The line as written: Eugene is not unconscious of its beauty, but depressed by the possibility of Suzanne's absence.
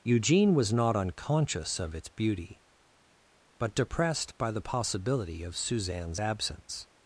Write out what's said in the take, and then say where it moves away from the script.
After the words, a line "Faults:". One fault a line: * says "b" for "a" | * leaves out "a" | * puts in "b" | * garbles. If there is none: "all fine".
Eugene was not unconscious of its beauty, but depressed by the possibility of Suzanne's absence.
Faults:
* says "was" for "is"